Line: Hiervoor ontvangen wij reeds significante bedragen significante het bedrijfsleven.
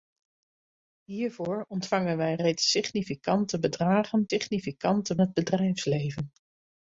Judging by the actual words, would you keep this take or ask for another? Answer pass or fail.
pass